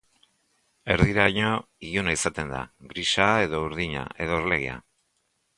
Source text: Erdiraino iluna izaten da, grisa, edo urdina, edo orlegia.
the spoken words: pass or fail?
pass